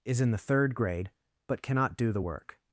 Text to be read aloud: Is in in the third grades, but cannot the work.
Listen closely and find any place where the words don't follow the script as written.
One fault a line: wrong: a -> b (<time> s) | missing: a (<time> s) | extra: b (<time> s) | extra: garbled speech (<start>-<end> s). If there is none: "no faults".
missing: in (0.3 s)
wrong: grades -> grade (0.8 s)
extra: do (2.0 s)